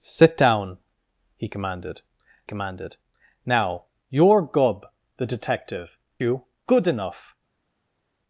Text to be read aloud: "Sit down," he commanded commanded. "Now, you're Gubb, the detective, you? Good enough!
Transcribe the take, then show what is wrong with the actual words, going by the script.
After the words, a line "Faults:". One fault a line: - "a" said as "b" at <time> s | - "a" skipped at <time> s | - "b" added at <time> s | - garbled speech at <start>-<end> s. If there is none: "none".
"Sit down," he commanded commanded. "Now, you're Gubb, the detective, you? Good enough!
Faults:
none